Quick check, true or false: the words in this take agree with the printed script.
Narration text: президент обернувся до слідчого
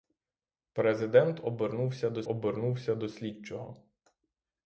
false